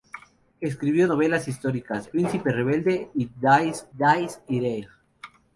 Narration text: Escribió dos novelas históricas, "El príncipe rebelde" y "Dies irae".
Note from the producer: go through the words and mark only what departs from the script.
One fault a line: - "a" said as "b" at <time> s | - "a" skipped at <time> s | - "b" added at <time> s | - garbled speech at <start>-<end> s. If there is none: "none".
- "dos" skipped at 1.1 s
- "El" skipped at 2.1 s
- "dies" added at 4.0 s